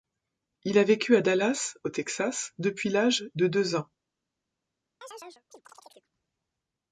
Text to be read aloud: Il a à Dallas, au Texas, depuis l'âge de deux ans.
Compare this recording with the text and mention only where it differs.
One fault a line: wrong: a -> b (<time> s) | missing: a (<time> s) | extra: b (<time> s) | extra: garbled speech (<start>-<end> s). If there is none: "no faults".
extra: vécu (0.8 s)